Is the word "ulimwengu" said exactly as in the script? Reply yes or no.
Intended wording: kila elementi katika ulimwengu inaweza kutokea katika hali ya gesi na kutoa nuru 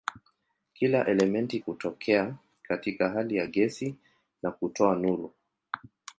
no